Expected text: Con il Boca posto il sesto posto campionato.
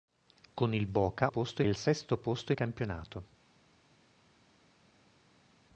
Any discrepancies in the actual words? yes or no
no